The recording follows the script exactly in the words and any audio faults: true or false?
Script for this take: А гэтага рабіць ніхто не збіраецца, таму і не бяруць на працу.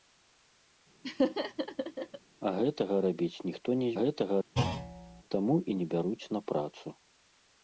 false